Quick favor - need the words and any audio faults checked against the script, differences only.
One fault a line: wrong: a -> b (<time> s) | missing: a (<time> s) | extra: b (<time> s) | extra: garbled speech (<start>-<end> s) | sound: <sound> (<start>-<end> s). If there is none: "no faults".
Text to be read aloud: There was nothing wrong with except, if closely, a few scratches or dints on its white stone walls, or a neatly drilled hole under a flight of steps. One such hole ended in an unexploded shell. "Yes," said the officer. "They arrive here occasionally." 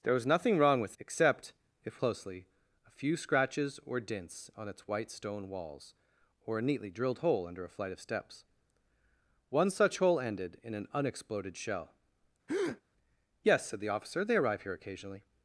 sound: breath (12.5-12.8 s)